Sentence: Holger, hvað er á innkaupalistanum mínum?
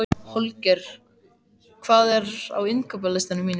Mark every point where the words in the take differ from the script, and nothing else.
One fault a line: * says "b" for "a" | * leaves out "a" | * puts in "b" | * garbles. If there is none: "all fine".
all fine